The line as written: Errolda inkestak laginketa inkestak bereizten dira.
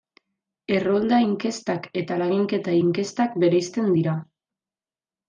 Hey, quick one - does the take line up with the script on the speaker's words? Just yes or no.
no